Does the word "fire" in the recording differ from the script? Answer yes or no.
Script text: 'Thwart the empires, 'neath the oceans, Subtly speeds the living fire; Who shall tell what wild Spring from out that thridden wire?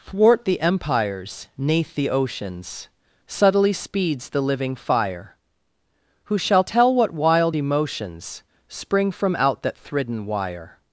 no